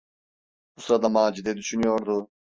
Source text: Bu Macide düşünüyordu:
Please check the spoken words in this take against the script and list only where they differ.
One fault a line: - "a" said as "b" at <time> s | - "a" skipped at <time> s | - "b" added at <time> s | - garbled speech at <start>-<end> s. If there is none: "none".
- "sırada" added at 0.8 s